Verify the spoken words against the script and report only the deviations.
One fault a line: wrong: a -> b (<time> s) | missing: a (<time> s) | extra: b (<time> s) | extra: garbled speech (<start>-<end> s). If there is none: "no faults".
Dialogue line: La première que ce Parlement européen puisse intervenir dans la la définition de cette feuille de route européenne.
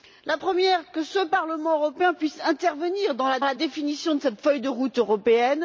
no faults